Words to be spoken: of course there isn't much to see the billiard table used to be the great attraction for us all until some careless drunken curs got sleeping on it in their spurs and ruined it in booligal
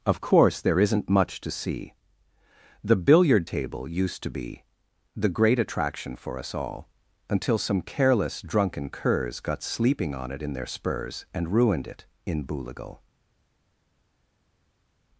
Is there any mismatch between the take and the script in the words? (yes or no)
no